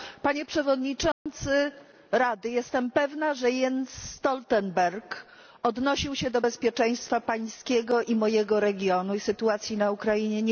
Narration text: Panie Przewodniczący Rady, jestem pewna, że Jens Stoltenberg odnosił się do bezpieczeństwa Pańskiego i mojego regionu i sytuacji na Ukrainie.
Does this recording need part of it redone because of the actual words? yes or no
no